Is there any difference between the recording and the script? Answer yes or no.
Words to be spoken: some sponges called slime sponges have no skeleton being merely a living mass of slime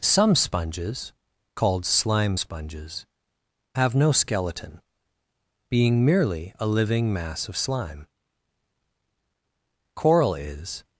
yes